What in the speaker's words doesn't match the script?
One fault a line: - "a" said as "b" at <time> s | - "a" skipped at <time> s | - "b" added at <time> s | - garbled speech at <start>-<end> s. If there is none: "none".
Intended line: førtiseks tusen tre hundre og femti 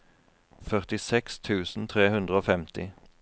none